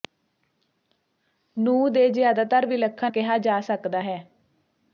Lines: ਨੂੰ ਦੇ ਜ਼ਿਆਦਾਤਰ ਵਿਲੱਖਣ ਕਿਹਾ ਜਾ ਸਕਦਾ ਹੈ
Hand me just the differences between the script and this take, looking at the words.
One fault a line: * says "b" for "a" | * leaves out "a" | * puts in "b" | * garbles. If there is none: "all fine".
all fine